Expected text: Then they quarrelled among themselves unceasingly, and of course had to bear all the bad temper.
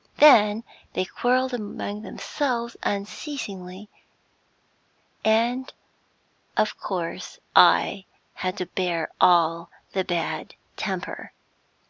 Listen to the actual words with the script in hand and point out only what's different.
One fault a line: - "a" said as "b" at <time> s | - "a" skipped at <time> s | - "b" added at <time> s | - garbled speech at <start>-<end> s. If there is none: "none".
- "I" added at 7.5 s